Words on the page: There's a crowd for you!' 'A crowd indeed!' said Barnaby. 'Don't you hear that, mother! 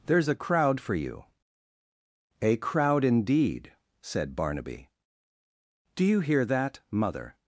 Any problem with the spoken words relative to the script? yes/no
yes